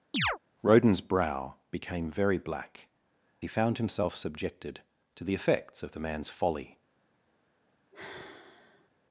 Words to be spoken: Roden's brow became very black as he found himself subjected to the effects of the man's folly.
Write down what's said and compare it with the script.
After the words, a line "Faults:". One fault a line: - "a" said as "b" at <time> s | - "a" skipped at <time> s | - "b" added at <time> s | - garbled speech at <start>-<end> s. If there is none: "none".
Roden's brow became very black he found himself subjected to the effects of the man's folly.
Faults:
- "as" skipped at 2.9 s